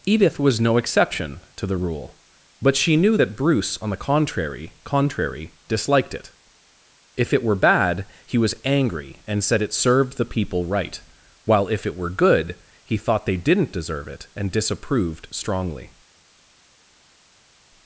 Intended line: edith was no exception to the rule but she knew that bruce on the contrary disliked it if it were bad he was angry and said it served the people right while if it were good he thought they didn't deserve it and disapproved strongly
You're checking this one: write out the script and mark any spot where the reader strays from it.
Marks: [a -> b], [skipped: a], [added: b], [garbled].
edith was no exception to the rule but she knew that bruce on the contrary [added: contrary] disliked it if it were bad he was angry and said it served the people right while if it were good he thought they didn't deserve it and disapproved strongly